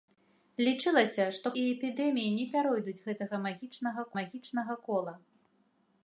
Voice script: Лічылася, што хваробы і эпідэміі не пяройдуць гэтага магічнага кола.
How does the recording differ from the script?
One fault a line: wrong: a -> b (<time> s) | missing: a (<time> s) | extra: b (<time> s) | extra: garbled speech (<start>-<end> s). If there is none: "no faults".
missing: хваробы (1.5 s)
extra: магічнага (4.2 s)